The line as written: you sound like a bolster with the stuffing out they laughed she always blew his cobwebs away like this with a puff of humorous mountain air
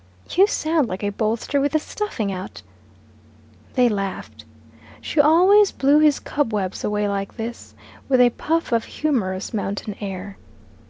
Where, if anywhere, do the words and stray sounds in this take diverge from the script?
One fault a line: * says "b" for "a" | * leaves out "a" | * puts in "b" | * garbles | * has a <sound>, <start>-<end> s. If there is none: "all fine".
all fine